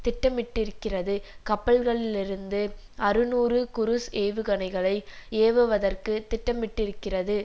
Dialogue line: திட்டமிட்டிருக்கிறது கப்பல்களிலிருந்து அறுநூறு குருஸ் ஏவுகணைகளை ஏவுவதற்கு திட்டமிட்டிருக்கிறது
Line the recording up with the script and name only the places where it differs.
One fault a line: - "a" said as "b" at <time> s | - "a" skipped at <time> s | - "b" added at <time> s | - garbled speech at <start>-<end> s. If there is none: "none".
none